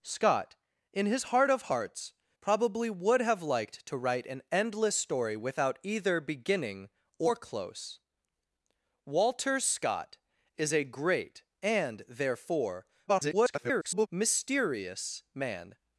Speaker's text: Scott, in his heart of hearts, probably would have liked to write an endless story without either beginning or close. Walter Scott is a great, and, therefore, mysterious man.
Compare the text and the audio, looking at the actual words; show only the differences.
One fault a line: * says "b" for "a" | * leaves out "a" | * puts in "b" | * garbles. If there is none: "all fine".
* garbles